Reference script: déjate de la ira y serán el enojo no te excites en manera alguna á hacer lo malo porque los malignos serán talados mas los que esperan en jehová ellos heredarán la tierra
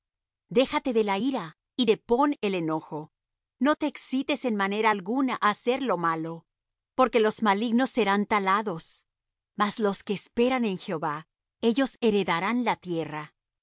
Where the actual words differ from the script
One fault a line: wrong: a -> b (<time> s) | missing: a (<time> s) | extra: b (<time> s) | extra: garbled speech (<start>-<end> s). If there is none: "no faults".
wrong: serán -> depón (1.8 s)